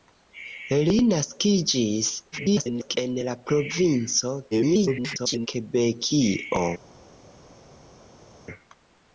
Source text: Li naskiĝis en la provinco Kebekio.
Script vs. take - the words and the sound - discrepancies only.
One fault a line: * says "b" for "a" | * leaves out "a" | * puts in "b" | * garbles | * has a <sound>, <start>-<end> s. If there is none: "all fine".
* garbles
* garbles